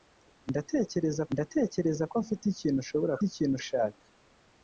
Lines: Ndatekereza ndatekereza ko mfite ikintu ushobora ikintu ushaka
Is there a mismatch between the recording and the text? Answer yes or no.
no